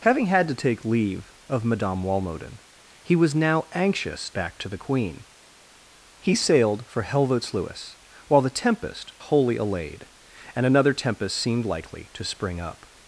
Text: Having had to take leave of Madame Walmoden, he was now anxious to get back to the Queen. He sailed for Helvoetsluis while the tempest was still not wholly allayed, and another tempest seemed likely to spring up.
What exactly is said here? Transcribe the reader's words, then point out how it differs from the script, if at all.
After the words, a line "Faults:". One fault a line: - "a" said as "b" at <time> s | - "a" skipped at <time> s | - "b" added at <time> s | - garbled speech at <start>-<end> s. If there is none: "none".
Having had to take leave of Madame Walmoden, he was now anxious back to the Queen. He sailed for Helvoetsluis while the tempest wholly allayed, and another tempest seemed likely to spring up.
Faults:
- "to get" skipped at 4.3 s
- "was still not" skipped at 9.1 s